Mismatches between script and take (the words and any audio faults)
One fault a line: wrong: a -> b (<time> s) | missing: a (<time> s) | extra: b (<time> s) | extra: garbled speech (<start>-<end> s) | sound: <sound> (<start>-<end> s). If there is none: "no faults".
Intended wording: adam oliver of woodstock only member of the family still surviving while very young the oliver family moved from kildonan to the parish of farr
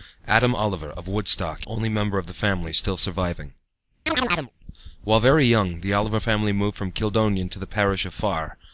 sound: chirp (4.1-4.5 s)